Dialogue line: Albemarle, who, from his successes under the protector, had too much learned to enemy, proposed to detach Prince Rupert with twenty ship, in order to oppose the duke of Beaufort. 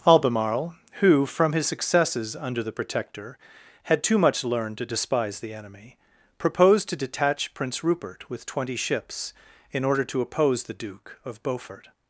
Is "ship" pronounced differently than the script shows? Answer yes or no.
yes